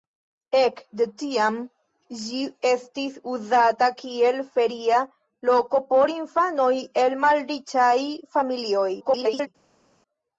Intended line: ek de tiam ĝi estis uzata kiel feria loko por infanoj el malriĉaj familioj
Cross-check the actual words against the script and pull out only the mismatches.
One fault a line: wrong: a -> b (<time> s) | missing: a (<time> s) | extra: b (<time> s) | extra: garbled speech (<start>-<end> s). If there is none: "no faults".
extra: garbled speech (9.0-9.5 s)